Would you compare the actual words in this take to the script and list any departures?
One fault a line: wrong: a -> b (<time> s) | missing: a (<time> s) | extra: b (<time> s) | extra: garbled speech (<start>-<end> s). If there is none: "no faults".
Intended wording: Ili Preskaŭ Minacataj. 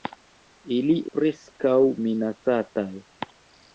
no faults